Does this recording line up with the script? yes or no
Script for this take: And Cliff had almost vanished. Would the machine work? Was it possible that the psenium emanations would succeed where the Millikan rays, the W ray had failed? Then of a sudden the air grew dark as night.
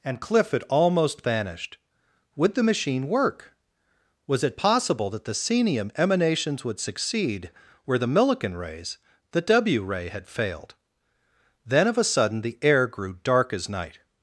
yes